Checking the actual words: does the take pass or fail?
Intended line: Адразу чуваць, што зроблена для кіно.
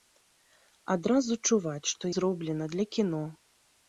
pass